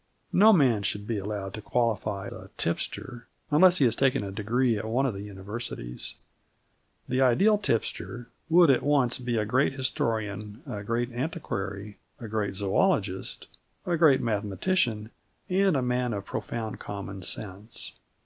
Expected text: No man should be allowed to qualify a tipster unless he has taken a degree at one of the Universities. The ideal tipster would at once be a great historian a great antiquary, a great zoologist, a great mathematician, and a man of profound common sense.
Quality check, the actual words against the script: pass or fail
pass